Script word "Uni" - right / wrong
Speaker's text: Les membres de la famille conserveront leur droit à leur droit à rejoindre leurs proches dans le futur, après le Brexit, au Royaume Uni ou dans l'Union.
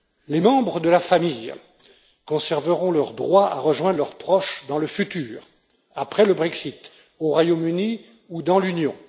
right